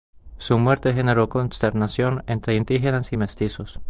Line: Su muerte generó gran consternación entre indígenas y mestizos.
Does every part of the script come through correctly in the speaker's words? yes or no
no